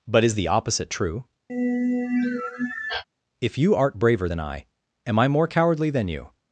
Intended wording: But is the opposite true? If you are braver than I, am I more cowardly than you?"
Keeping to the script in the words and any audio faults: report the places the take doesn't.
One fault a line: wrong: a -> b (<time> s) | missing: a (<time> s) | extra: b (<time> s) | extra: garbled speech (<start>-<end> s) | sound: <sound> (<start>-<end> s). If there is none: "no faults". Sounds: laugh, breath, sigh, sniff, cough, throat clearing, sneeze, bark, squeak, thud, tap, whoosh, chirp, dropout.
sound: sigh (1.5-3.0 s)
wrong: are -> art (3.7 s)